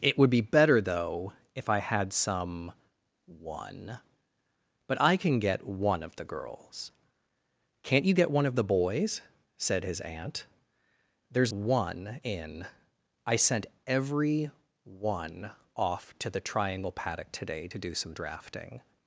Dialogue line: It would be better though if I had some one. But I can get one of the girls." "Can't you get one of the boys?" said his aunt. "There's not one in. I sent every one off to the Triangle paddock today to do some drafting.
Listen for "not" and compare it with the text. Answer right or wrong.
wrong